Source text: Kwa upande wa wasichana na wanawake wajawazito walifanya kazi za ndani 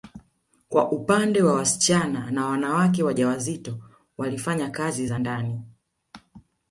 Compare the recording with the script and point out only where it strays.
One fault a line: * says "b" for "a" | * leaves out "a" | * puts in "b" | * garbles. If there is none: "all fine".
all fine